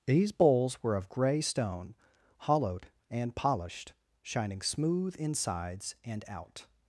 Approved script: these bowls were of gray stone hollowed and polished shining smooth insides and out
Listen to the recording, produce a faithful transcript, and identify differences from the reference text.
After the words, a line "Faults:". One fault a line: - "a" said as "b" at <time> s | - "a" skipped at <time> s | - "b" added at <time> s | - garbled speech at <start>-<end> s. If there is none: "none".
these bowls were of gray stone hollowed and polished shining smooth insides and out
Faults:
none